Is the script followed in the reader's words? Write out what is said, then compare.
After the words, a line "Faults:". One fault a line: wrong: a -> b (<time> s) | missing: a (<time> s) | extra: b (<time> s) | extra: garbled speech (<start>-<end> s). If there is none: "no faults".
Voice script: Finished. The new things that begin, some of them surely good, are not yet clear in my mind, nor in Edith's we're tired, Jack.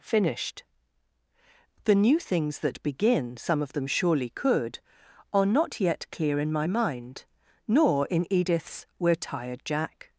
Finished. The new things that begin, some of them surely could, are not yet clear in my mind, nor in Edith's we're tired, Jack.
Faults:
wrong: good -> could (4.3 s)